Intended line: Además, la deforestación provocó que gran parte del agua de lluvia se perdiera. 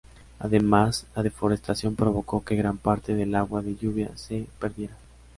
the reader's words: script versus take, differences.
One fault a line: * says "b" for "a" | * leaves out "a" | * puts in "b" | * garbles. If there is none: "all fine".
all fine